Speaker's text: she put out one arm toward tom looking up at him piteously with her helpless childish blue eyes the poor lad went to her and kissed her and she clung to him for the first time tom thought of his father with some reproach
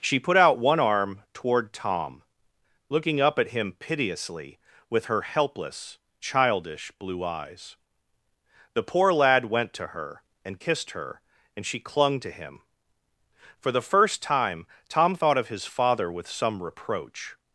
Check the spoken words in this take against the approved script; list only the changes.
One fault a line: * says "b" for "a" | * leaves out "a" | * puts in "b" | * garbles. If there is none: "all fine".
all fine